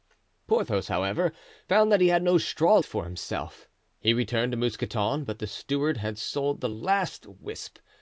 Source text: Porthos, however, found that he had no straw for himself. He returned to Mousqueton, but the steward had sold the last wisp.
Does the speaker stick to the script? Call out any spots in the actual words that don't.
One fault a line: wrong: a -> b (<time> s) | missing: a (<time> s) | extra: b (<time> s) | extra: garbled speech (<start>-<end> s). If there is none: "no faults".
no faults